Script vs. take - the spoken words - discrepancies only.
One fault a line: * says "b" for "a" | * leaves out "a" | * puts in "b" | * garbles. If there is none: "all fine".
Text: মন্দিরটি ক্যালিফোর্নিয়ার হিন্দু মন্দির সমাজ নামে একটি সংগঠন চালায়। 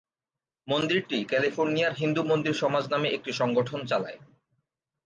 all fine